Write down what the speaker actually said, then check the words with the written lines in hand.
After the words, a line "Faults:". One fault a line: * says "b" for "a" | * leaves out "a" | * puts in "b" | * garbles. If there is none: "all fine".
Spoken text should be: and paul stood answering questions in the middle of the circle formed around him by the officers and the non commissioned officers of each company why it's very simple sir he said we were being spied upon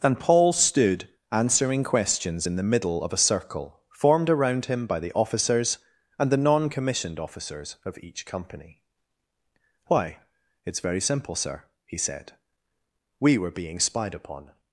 and paul stood answering questions in the middle of a circle formed around him by the officers and the non commissioned officers of each company why it's very simple sir he said we were being spied upon
Faults:
* says "a" for "the"